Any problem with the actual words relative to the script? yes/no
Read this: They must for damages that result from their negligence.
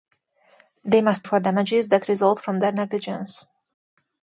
no